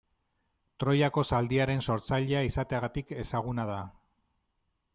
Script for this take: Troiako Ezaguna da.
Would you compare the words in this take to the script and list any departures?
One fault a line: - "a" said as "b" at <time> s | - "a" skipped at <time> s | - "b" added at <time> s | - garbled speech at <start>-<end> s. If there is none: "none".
- "Zaldiaren sortzailea izateagatik" added at 1.3 s